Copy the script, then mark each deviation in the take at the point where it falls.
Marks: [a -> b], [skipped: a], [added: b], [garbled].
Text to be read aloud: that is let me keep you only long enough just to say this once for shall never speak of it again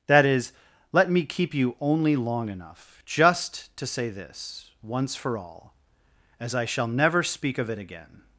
that is let me keep you only long enough just to say this once for [added: all as i] shall never speak of it again